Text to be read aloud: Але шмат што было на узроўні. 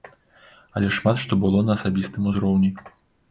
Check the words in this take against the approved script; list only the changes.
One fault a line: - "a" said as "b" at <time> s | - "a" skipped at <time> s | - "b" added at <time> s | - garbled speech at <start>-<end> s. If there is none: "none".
- "асабістым" added at 1.8 s